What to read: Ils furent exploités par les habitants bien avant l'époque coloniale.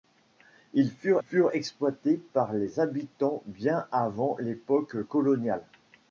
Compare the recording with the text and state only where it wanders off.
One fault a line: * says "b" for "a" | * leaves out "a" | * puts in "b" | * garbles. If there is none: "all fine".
* puts in "furent"